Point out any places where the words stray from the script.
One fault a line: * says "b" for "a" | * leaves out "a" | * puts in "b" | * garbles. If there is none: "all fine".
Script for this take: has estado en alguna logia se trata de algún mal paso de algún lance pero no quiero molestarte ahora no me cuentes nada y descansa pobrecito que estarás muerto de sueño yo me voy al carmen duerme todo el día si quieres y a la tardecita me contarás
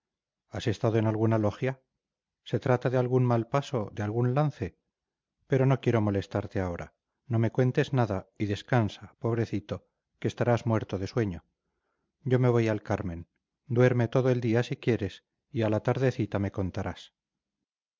all fine